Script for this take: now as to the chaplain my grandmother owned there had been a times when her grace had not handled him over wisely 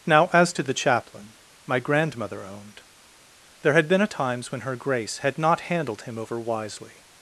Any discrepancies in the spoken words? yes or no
no